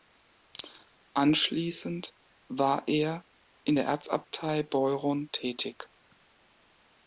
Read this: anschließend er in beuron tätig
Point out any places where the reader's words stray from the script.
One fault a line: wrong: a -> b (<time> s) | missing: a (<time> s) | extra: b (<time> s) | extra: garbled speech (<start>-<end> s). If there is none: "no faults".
extra: war (2.5 s)
extra: der erzabtei (3.7 s)